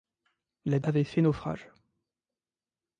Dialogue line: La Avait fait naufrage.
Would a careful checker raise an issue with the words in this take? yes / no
no